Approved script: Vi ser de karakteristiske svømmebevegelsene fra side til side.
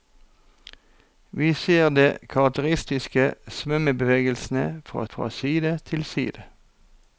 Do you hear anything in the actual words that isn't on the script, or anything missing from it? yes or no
yes